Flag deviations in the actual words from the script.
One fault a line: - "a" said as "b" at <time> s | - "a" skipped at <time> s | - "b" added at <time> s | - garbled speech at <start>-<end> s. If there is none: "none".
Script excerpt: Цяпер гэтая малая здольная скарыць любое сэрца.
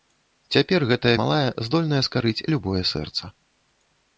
none